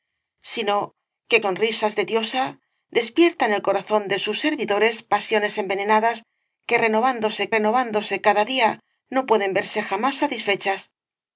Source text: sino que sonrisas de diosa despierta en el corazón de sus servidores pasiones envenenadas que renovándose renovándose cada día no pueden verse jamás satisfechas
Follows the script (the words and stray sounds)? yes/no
yes